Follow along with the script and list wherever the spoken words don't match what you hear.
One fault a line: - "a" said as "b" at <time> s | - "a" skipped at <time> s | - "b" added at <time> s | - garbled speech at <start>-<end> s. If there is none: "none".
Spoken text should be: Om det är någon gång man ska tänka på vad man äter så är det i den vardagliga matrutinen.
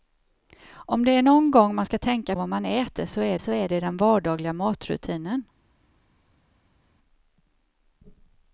- "på" skipped at 2.4 s
- "så är" added at 3.4 s